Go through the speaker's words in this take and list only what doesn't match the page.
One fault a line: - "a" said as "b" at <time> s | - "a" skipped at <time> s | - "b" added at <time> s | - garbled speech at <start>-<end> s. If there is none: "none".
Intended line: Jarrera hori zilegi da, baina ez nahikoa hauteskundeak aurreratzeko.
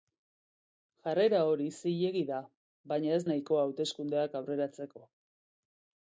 none